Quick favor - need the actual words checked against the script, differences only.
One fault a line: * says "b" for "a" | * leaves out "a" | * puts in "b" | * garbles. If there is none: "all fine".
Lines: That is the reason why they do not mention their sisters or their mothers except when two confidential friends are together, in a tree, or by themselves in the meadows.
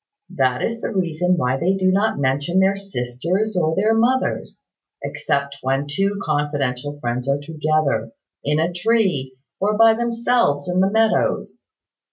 all fine